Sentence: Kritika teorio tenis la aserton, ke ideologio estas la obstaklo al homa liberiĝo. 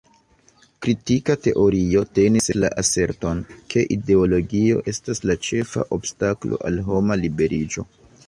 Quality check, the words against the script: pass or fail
fail